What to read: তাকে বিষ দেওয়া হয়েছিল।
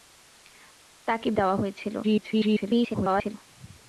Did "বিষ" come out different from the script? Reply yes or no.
yes